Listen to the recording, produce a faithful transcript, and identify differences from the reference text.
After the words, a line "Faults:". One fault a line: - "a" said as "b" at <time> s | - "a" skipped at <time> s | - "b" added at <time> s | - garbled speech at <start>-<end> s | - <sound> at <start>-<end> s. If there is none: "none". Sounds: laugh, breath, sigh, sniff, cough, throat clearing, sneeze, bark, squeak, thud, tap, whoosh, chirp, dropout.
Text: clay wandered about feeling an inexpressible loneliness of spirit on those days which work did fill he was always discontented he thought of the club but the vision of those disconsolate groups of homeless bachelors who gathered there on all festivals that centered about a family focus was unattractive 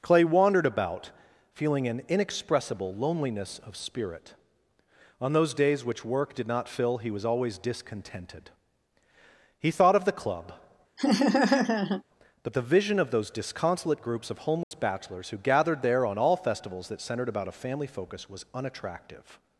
clay wandered about feeling an inexpressible loneliness of spirit on those days which work did not fill he was always discontented he thought of the club but the vision of those disconsolate groups of homeless bachelors who gathered there on all festivals that centered about a family focus was unattractive
Faults:
- "not" added at 6.5 s
- laugh at 11.0-12.0 s
- dropout at 14.6-14.7 s